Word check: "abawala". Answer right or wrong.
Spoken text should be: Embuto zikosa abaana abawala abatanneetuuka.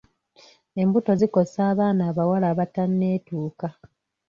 right